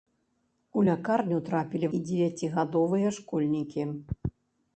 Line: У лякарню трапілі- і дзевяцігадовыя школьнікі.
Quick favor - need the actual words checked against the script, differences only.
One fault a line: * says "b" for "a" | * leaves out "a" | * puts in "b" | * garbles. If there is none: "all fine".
all fine